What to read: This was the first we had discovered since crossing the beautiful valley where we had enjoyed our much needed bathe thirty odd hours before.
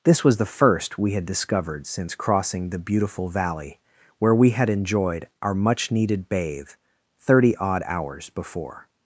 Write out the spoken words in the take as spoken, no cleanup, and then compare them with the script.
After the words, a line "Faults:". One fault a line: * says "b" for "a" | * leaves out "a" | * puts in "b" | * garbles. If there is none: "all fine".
This was the first we had discovered since crossing the beautiful valley where we had enjoyed our much needed bathe thirty odd hours before.
Faults:
all fine